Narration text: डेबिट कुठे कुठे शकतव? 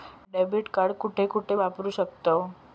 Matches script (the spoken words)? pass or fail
fail